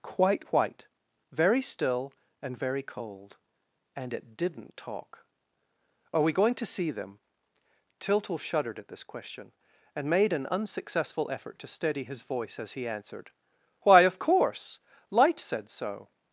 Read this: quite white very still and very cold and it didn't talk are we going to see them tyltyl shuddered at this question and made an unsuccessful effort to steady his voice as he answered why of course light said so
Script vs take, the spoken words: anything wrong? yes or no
no